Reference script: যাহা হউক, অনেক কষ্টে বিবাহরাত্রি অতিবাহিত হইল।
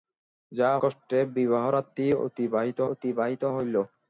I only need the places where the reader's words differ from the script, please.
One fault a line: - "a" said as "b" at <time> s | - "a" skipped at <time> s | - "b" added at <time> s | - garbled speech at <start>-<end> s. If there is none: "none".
- "হউক অনেক" skipped at 0.8 s
- "অতিবাহিত" added at 2.9 s